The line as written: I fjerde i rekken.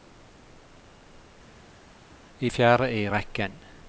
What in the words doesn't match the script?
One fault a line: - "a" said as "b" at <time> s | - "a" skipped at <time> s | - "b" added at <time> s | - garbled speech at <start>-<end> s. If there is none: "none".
none